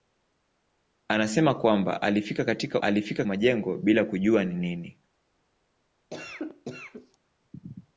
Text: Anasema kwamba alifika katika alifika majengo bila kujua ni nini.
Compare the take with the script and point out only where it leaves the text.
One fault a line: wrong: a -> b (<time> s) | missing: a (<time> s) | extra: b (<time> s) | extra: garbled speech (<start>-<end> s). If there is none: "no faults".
no faults